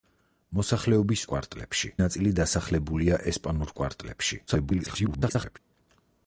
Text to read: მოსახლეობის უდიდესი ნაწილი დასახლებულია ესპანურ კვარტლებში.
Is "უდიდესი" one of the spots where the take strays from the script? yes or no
yes